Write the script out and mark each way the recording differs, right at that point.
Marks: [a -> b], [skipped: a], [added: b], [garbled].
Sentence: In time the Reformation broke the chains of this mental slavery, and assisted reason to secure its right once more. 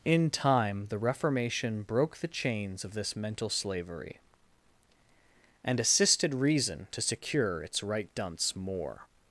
In time the Reformation broke the chains of this mental slavery, and assisted reason to secure its right [once -> dunce] more.